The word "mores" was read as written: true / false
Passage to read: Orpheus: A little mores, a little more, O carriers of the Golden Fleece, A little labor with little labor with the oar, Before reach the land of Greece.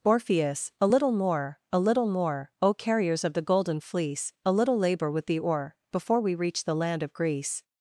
false